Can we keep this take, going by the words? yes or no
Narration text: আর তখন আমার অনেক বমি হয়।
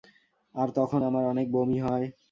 yes